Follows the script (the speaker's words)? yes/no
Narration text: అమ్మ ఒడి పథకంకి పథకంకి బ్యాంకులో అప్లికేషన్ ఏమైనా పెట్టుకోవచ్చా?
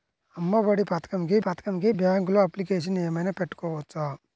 yes